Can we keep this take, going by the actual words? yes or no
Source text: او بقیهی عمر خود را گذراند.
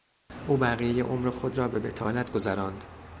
no